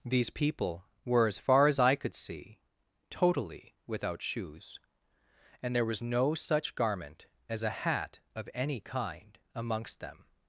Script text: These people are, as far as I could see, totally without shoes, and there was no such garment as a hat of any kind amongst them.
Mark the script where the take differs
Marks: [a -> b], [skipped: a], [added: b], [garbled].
These people [are, -> were] as far as I could see, totally without shoes, and there was no such garment as a hat of any kind amongst them.